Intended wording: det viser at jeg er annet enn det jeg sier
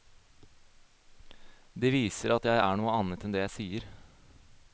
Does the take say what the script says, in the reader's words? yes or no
no